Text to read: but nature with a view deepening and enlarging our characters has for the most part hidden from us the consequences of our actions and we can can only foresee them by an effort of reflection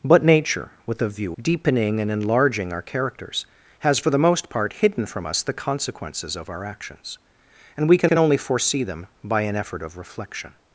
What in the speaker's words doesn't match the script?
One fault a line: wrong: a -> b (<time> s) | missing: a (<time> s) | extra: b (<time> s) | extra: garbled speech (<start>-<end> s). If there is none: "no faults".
no faults